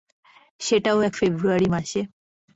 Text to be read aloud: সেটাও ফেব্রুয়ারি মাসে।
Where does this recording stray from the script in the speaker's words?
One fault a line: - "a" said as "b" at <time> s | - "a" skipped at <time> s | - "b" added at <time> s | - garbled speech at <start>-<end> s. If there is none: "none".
- "এক" added at 1.0 s